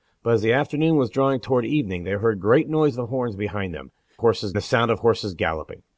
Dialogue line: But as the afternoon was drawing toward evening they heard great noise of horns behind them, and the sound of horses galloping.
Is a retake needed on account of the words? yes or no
yes